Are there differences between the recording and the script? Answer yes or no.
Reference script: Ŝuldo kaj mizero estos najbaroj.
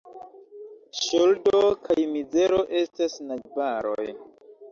yes